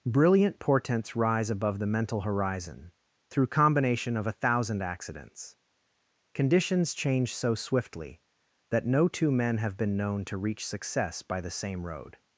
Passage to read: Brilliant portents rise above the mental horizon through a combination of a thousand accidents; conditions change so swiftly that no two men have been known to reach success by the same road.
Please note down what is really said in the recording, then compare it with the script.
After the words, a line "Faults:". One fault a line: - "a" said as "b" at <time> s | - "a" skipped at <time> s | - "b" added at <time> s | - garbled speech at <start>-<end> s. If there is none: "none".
Brilliant portents rise above the mental horizon through combination of a thousand accidents; conditions change so swiftly that no two men have been known to reach success by the same road.
Faults:
- "a" skipped at 3.5 s